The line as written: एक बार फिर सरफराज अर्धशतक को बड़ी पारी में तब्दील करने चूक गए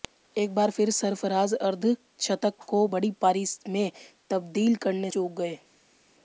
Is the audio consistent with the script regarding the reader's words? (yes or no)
yes